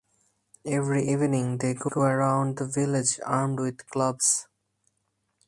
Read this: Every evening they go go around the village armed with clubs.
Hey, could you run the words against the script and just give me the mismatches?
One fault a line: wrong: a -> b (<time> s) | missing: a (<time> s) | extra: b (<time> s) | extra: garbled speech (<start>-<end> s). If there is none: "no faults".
no faults